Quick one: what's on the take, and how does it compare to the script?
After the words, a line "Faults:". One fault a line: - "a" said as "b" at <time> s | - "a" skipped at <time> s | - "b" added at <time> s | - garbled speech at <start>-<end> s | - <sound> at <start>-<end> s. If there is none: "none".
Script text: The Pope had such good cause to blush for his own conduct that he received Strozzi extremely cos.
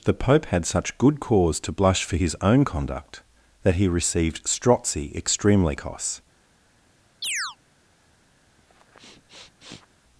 The Pope had such good cause to blush for his own conduct that he received Strozzi extremely cos.
Faults:
- chirp at 7.2-7.6 s
- sniff at 8.6-9.9 s